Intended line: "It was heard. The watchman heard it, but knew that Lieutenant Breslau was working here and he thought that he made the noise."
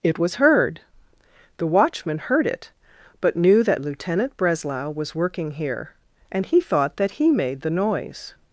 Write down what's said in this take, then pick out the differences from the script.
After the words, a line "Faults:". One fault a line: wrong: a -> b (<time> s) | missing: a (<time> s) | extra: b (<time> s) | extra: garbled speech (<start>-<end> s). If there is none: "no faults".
"It was heard. The watchman heard it, but knew that Lieutenant Breslau was working here and he thought that he made the noise."
Faults:
no faults